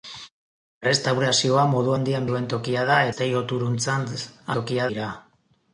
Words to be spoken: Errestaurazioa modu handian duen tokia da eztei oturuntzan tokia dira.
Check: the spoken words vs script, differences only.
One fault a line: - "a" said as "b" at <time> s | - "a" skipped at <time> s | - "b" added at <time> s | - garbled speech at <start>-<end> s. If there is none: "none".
none